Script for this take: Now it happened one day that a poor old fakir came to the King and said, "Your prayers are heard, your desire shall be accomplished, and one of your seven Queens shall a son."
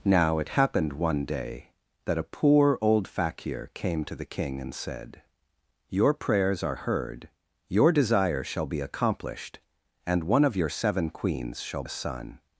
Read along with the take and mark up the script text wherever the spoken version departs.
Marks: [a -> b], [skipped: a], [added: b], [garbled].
Now it happened one day that a poor old fakir came to the King and said, "Your prayers are heard, your desire shall be accomplished, and one of your seven Queens shall a son."